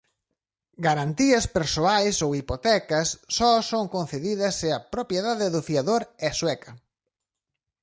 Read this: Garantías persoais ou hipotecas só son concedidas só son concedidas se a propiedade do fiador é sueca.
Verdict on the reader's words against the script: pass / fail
fail